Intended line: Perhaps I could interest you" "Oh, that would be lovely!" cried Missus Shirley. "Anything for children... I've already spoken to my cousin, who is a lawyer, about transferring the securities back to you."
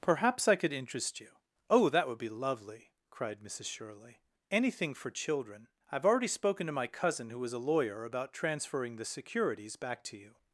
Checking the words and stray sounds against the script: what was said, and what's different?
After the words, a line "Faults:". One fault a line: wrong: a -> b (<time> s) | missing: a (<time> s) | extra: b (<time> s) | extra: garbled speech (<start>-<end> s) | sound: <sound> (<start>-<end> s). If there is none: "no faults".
Perhaps I could interest you" "Oh, that would be lovely!" cried Missus Shirley. "Anything for children... I've already spoken to my cousin, who is a lawyer, about transferring the securities back to you."
Faults:
no faults